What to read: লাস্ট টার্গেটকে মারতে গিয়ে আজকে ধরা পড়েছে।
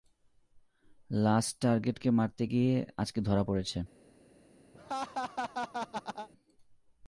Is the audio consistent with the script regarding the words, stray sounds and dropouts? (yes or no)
no